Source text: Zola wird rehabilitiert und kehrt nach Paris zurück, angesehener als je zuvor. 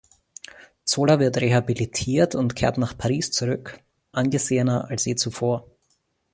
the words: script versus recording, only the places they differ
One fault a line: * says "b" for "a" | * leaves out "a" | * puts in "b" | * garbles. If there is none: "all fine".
all fine